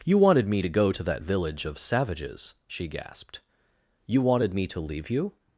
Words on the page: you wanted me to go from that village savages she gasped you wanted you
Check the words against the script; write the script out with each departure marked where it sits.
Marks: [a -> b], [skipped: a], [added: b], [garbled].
you wanted me to go [from -> to] that village [added: of] savages she gasped you wanted [added: me to leave] you